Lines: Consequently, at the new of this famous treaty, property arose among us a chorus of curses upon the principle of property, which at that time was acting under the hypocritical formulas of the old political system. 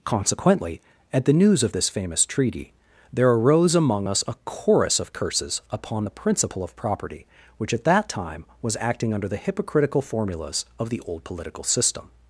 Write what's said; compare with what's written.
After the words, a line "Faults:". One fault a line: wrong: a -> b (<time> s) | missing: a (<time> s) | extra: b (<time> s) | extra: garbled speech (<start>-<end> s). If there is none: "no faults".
Consequently, at the news of this famous treaty, there arose among us a chorus of curses upon the principle of property, which at that time was acting under the hypocritical formulas of the old political system.
Faults:
wrong: new -> news (1.3 s)
wrong: property -> there (3.1 s)